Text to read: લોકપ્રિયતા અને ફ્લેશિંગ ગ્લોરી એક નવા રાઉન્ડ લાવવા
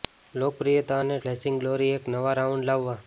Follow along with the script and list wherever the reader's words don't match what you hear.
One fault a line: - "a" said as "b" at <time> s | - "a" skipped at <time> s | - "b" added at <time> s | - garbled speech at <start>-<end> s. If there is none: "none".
none